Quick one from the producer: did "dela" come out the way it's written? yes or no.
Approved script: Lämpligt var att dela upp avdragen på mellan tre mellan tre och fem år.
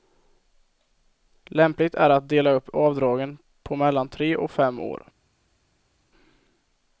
yes